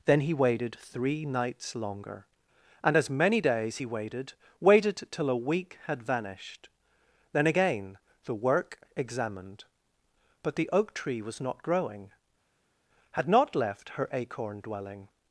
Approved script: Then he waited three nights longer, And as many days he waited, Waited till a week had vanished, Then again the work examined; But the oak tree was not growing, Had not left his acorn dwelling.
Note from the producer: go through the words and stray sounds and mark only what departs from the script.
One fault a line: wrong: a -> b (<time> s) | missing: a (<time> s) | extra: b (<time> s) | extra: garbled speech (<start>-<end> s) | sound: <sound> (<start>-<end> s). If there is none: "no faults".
wrong: his -> her (14.0 s)